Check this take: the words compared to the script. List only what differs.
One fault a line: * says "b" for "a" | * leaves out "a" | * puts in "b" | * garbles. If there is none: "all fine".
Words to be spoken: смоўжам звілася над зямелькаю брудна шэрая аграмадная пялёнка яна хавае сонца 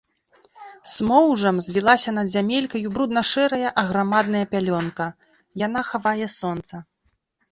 all fine